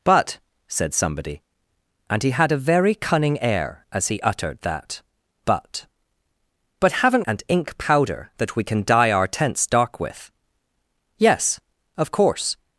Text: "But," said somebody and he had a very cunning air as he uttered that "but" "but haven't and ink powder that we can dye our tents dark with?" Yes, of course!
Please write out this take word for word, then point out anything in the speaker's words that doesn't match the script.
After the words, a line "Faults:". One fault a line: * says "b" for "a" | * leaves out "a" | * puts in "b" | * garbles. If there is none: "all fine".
"But," said somebody and he had a very cunning air as he uttered that "but" "but haven't and ink powder that we can dye our tents dark with?" Yes, of course!
Faults:
all fine